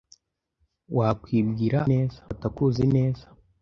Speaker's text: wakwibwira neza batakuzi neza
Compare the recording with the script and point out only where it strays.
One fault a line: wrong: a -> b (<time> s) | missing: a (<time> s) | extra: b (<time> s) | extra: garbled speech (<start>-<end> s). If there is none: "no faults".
no faults